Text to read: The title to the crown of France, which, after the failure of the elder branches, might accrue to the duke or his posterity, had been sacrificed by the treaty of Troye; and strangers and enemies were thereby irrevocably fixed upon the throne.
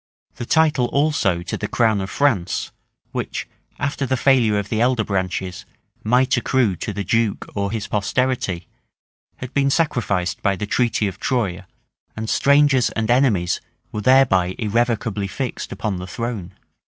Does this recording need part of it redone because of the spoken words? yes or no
yes